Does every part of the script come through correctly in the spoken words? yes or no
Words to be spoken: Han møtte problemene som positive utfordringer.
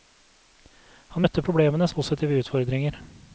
no